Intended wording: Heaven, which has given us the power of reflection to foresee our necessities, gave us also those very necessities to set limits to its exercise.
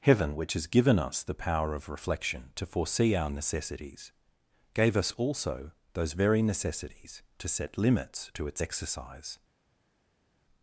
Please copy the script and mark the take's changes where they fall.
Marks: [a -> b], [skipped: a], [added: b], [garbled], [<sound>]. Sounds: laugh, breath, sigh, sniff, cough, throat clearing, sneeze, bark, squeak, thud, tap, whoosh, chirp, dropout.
Heaven, which has given us the power of reflection to foresee our necessities, gave us also those very necessities to set limits to its exercise.